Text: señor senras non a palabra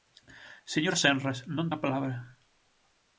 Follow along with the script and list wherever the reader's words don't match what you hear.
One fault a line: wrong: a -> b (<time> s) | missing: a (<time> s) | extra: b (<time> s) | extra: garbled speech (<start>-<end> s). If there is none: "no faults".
no faults